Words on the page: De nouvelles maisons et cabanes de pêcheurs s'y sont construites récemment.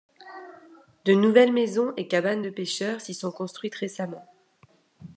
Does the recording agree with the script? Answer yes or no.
yes